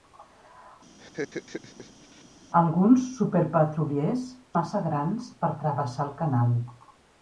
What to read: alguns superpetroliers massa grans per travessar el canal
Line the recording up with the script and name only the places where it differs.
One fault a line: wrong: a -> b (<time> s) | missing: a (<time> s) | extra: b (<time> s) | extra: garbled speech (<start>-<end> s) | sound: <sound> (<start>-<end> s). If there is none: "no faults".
sound: laugh (1.0-2.2 s)